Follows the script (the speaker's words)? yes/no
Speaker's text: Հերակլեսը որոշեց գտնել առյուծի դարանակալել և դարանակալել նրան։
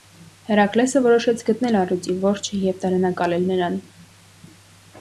no